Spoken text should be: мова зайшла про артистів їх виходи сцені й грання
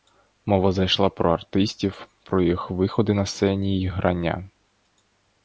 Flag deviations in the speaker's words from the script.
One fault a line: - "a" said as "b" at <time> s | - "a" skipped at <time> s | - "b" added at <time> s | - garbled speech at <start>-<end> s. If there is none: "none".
- "про" added at 2.2 s
- "на" added at 3.1 s